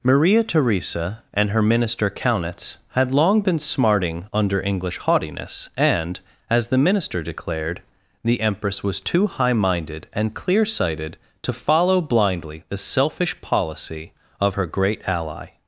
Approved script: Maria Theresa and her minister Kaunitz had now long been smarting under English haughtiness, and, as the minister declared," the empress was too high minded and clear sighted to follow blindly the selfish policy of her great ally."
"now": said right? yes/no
no